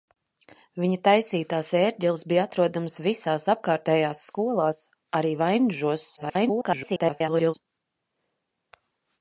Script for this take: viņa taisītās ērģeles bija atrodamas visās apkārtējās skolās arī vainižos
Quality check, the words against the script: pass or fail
fail